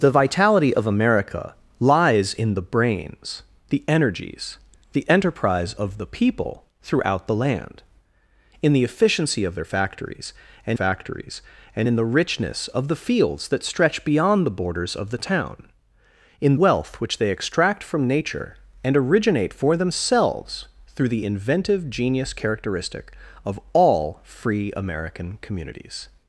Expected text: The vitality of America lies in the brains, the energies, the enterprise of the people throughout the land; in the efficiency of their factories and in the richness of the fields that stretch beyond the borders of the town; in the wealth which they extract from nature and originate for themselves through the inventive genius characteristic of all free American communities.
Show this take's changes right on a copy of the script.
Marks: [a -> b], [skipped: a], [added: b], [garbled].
The vitality of America lies in the brains, the energies, the enterprise of the people throughout the land; in the efficiency of their factories and [added: factories and] in the richness of the fields that stretch beyond the borders of the town; in [skipped: the] wealth which they extract from nature and originate for themselves through the inventive genius characteristic of all free American communities.